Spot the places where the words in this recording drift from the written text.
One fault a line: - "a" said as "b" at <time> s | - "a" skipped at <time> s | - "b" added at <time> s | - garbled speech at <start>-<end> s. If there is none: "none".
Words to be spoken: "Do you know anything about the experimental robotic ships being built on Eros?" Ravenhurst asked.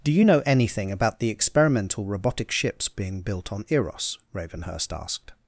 none